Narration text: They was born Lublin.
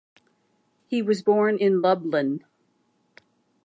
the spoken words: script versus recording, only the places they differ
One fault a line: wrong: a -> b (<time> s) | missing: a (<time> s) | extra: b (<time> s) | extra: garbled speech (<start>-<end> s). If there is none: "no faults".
wrong: They -> He (0.9 s)
extra: in (1.6 s)